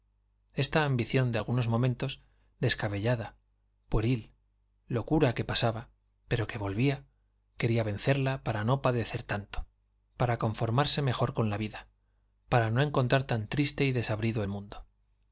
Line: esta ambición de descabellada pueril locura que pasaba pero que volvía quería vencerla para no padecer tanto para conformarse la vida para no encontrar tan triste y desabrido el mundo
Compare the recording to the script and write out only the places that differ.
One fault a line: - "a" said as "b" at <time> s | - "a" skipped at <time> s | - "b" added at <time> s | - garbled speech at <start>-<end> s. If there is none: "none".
- "algunos momentos" added at 1.3 s
- "mejor con" added at 11.0 s